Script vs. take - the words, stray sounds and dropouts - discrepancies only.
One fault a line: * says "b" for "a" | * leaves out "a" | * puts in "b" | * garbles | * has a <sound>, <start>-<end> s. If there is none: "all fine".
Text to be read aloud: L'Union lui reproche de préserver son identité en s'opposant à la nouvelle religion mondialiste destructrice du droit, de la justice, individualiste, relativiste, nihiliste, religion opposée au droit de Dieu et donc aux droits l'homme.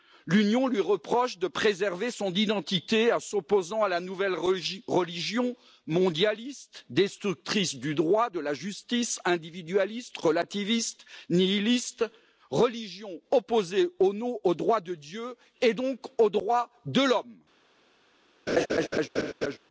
* puts in "de"
* has a laugh, 18.5-19.6 s